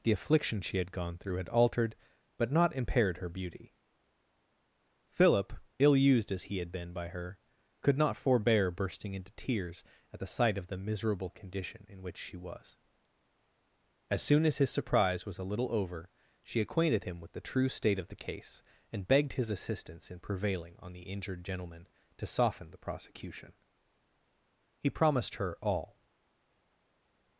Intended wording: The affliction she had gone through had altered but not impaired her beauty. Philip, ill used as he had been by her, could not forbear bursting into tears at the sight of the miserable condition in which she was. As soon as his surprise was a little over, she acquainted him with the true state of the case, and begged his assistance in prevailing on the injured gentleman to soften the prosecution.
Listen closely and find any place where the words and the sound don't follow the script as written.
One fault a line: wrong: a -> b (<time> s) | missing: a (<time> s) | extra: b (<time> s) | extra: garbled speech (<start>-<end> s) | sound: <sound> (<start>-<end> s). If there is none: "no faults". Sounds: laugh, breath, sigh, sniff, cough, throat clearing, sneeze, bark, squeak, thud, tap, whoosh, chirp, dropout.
extra: He promised her all (24.8 s)